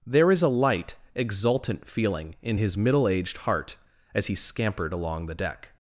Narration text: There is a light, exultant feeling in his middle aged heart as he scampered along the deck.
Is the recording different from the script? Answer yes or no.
no